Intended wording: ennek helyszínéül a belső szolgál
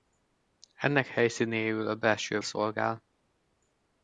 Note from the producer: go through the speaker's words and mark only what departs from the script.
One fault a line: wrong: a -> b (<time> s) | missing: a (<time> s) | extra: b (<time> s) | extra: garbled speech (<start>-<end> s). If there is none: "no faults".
no faults